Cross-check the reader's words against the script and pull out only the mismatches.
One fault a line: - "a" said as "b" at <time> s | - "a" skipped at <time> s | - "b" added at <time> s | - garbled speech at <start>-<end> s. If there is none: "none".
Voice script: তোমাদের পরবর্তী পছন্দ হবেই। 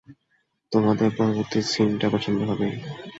- "সিনটা" added at 1.6 s